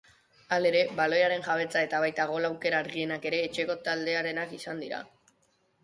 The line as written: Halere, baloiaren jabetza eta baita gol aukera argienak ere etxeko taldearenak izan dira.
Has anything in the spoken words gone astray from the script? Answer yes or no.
no